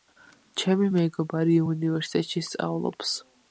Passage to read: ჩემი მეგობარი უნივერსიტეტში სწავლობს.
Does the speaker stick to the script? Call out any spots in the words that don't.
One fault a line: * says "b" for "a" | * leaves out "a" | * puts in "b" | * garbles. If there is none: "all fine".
all fine